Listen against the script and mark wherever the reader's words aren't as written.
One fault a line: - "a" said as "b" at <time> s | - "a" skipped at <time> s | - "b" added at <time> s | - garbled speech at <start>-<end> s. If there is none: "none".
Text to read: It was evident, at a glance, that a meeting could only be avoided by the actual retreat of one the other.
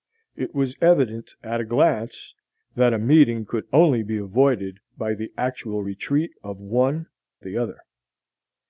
none